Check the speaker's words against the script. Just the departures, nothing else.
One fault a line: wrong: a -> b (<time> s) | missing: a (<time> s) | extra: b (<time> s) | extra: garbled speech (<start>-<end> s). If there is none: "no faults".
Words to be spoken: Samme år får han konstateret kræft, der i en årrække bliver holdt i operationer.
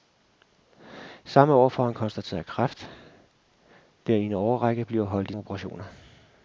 no faults